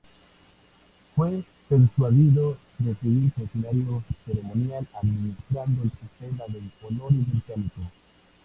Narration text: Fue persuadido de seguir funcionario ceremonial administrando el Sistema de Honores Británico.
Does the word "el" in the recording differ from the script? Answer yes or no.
no